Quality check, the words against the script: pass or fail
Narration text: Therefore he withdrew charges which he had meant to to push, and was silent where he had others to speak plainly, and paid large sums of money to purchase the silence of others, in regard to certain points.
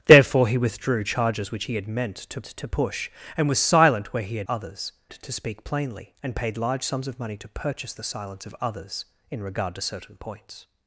pass